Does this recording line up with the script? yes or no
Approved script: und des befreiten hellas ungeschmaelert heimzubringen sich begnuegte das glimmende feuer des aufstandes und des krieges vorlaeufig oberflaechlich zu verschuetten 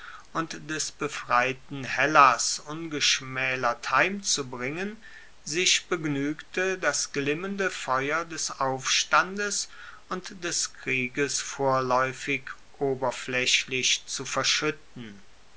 yes